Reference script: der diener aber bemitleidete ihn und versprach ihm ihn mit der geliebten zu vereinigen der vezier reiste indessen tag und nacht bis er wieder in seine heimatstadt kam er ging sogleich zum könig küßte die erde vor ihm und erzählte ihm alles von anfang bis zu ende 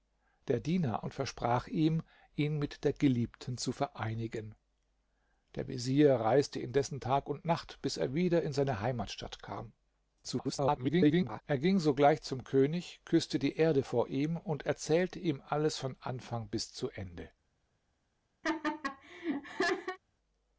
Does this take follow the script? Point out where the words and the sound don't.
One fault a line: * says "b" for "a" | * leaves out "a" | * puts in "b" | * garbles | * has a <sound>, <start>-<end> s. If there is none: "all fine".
* leaves out "aber bemitleidete ihn"
* garbles
* has a laugh, 18.4-20.0 s